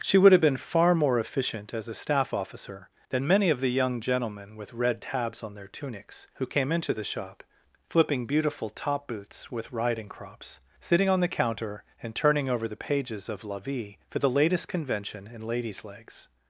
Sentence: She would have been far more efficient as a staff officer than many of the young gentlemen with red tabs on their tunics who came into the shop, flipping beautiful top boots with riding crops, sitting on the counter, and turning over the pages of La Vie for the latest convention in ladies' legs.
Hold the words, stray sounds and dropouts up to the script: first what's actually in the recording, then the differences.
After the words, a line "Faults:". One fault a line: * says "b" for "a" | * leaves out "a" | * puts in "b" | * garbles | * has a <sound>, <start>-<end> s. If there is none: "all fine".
She would have been far more efficient as a staff officer than many of the young gentlemen with red tabs on their tunics who came into the shop, flipping beautiful top boots with riding crops, sitting on the counter, and turning over the pages of La Vie for the latest convention in ladies' legs.
Faults:
all fine